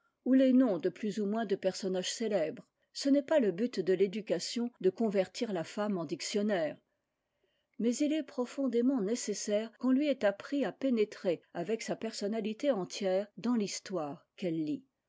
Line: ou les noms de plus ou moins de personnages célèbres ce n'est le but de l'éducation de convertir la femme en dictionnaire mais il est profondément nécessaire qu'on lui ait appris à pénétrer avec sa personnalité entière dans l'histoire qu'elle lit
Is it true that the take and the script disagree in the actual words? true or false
true